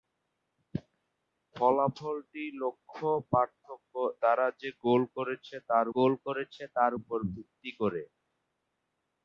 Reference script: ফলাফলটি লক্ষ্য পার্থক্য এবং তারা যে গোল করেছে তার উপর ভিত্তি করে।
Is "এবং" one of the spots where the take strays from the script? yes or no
yes